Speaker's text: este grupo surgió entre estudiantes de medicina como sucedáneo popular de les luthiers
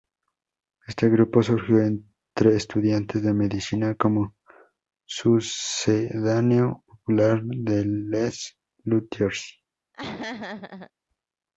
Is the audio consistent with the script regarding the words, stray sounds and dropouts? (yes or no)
no